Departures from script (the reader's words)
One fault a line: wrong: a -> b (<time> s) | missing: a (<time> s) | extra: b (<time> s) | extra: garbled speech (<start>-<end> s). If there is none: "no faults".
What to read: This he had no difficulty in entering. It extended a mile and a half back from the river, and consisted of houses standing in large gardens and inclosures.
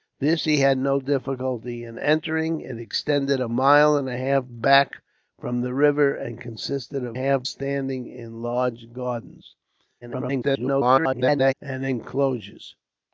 wrong: houses -> half (7.1 s)
extra: garbled speech (10.0-11.5 s)